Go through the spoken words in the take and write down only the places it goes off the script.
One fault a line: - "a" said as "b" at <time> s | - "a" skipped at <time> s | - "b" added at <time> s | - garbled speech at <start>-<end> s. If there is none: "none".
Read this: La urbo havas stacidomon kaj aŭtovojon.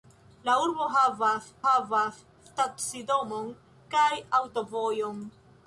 - "havas" added at 1.6 s